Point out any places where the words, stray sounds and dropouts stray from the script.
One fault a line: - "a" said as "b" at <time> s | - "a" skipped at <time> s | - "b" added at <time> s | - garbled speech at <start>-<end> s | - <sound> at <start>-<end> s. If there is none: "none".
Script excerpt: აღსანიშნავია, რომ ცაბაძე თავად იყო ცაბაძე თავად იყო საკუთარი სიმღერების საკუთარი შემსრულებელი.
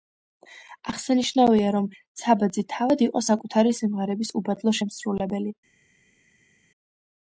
- "ცაბაძე თავად იყო" skipped at 3.2 s
- "საკუთარი" said as "უბადლო" at 4.4 s